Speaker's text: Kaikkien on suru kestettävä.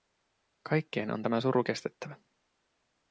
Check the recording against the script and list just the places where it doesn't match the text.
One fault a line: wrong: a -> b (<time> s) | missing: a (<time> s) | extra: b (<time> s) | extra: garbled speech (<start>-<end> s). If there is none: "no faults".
extra: tämä (1.2 s)